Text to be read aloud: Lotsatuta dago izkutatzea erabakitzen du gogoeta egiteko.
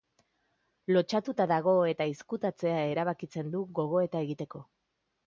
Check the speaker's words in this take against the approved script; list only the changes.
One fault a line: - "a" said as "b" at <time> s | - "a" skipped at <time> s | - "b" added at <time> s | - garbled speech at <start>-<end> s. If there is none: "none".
- "eta" added at 1.9 s